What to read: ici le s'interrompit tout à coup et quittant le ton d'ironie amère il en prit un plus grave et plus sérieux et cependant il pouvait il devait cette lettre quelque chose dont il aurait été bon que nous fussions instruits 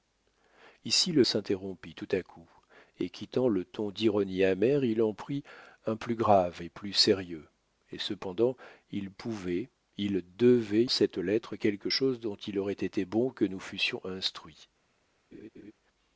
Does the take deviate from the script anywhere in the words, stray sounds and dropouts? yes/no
yes